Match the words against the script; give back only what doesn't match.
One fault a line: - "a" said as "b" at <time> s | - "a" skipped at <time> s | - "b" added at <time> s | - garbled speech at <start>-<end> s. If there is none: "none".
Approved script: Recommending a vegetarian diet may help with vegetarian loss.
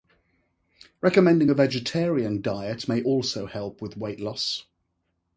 - "also" added at 3.0 s
- "vegetarian" said as "weight" at 4.0 s